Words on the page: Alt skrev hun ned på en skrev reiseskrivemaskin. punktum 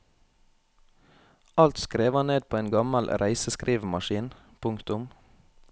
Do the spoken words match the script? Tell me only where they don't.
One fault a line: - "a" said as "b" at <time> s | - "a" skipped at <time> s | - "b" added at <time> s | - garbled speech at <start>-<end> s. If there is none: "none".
- "hun" said as "han" at 2.1 s
- "skrev" said as "gammel" at 2.7 s